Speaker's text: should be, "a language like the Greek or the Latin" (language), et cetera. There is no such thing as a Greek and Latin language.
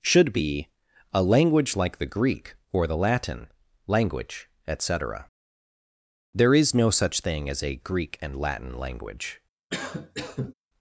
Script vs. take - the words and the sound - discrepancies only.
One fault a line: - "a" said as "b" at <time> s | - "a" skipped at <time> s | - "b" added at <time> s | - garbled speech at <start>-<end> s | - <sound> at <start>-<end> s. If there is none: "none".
- cough at 9.7-10.5 s